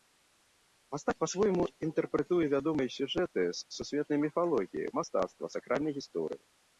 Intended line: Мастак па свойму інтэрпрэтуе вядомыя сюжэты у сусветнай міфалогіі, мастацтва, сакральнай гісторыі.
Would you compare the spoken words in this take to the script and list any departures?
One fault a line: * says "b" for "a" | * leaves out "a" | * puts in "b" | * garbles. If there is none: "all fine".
* says "з" for "у"